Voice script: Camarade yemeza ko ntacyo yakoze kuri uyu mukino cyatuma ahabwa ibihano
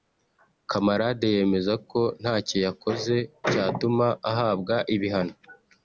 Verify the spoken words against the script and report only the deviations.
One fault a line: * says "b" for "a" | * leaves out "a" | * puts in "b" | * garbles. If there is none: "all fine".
* leaves out "kuri uyu mukino"